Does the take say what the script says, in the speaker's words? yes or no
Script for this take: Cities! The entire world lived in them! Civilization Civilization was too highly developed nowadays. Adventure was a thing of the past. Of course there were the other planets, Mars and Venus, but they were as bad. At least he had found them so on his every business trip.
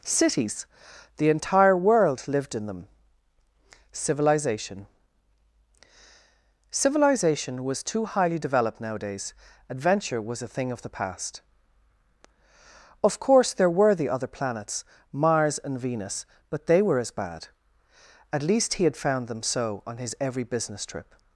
yes